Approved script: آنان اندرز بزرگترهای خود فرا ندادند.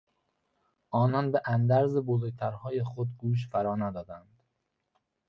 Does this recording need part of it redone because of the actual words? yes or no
yes